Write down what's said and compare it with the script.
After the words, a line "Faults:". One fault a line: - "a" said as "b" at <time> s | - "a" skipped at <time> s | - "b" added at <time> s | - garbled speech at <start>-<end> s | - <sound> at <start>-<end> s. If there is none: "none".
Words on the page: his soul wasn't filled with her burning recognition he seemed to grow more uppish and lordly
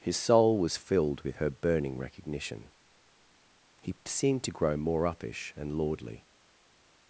his soul was filled with her burning recognition he seemed to grow more uppish and lordly
Faults:
- "wasn't" said as "was" at 0.6 s